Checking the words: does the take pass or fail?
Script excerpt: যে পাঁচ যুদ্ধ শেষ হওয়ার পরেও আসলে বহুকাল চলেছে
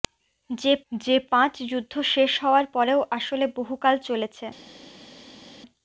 fail